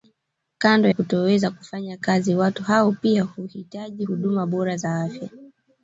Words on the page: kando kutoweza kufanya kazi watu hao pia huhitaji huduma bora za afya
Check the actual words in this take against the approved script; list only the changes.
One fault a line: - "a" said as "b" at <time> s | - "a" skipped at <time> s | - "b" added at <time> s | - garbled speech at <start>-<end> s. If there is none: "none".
none